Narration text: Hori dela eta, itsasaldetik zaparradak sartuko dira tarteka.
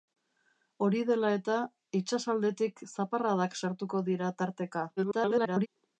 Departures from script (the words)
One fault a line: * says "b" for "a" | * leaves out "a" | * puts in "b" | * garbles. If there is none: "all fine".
* garbles